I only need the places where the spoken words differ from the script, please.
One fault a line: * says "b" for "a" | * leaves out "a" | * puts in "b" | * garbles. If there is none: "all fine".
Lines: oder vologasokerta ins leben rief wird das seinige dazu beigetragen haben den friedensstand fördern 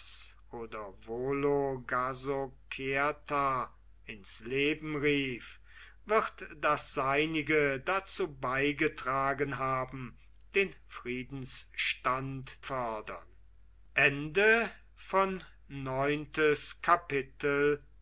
all fine